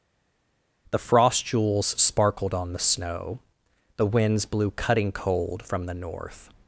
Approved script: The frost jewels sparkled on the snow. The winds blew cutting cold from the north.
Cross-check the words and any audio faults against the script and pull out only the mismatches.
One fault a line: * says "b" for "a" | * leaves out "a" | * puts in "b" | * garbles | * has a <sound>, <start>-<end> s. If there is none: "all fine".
all fine